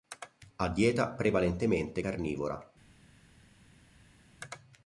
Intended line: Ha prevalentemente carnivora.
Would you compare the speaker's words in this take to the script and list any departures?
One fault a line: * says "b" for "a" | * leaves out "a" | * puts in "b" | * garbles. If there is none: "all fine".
* puts in "dieta"